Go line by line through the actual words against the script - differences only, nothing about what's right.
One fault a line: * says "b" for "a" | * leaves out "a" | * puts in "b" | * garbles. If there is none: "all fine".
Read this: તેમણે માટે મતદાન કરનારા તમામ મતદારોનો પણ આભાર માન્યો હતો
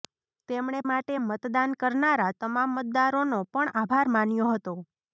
all fine